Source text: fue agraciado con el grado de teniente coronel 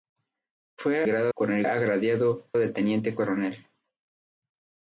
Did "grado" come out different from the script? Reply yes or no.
yes